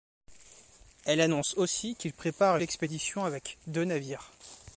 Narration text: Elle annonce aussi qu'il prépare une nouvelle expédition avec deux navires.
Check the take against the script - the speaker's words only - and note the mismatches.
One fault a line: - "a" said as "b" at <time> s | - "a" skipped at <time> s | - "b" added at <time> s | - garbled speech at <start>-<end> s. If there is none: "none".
- "une nouvelle" skipped at 2.6 s